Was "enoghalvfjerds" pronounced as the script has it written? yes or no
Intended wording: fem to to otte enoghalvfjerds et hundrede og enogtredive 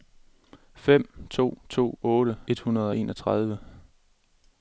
no